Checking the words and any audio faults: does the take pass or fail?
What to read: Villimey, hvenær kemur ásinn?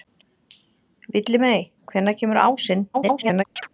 fail